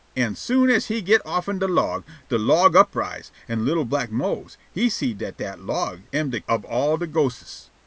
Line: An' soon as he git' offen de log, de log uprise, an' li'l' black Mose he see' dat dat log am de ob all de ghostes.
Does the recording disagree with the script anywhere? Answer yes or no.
no